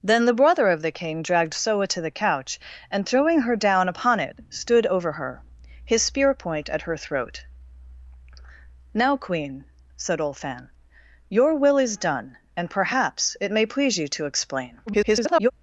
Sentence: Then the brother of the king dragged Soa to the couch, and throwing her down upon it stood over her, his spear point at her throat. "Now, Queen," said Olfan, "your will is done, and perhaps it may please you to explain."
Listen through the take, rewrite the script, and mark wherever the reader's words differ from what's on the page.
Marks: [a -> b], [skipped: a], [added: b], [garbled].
Then the brother of the king dragged Soa to the couch, and throwing her down upon it stood over her, his spear point at her throat. "Now, Queen," said Olfan, "your will is done, and perhaps it may please you to explain." [garbled]